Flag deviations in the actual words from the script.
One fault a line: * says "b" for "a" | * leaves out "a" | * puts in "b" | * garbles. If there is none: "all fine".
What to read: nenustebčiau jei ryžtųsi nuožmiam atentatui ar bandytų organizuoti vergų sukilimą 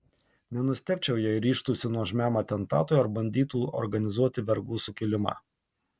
all fine